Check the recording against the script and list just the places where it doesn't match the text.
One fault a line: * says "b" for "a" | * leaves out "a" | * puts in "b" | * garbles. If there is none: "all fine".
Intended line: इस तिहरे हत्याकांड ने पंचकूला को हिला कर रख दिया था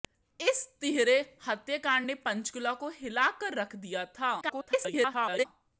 * garbles